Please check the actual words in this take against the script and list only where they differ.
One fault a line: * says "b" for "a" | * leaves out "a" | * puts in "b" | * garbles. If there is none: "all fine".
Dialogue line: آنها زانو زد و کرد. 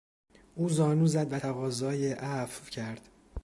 * says "او" for "آنها"
* puts in "تقاضای عفو"